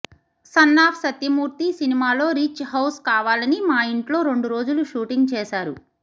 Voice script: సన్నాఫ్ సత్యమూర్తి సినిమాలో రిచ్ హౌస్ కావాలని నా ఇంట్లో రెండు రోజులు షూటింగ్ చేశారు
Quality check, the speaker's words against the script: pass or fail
fail